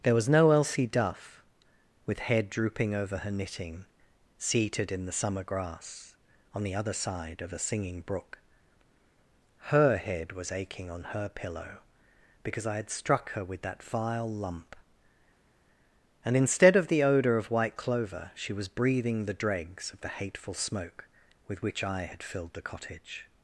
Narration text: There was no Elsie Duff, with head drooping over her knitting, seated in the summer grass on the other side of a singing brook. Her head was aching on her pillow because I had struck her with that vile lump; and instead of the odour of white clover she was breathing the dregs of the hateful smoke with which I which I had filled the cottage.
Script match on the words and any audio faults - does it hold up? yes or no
no